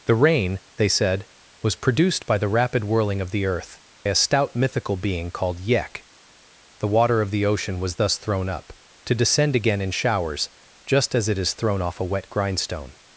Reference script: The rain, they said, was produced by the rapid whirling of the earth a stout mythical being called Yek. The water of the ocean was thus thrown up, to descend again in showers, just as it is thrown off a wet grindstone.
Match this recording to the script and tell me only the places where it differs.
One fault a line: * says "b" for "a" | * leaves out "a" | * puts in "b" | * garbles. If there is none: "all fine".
all fine